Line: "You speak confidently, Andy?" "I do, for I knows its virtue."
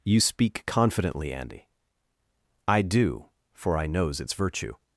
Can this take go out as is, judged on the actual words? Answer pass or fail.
pass